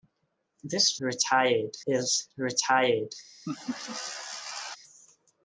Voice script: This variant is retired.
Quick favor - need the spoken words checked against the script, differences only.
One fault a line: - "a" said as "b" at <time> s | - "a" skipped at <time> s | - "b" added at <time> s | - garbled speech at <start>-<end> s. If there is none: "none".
- "variant" said as "retired" at 1.0 s